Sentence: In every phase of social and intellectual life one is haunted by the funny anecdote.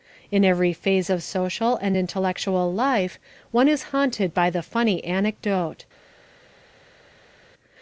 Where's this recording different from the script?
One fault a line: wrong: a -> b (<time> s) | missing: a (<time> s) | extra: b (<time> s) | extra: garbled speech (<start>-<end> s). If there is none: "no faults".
no faults